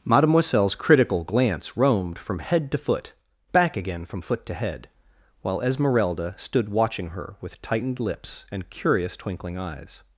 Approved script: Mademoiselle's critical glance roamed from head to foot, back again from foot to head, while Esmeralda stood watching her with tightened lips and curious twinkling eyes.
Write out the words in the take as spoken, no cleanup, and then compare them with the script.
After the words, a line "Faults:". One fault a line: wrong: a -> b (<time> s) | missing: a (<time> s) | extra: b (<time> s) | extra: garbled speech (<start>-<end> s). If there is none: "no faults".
Mademoiselle's critical glance roamed from head to foot, back again from foot to head, while Esmeralda stood watching her with tightened lips and curious twinkling eyes.
Faults:
no faults